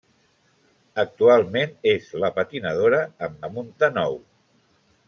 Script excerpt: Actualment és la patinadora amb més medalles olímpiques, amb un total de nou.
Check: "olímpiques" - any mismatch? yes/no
yes